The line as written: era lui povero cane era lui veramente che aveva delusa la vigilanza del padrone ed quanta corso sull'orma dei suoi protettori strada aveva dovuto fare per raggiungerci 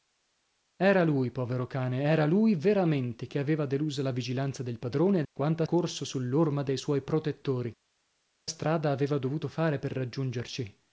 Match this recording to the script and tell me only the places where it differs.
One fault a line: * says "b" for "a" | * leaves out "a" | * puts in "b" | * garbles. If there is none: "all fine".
all fine